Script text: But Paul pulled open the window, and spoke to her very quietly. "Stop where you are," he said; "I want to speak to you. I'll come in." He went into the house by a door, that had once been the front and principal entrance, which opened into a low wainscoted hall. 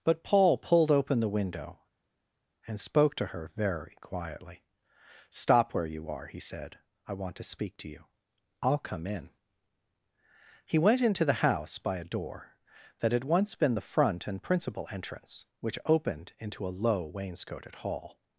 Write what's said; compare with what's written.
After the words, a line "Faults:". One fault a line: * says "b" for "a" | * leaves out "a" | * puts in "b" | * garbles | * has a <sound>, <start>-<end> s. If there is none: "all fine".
But Paul pulled open the window, and spoke to her very quietly. "Stop where you are," he said; "I want to speak to you. I'll come in." He went into the house by a door, that had once been the front and principal entrance, which opened into a low wainscoted hall.
Faults:
all fine